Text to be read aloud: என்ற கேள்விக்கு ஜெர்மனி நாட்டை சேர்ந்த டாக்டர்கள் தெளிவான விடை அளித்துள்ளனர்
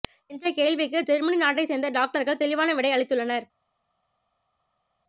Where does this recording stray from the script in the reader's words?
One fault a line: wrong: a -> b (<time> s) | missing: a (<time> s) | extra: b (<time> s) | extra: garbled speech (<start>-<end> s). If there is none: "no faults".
no faults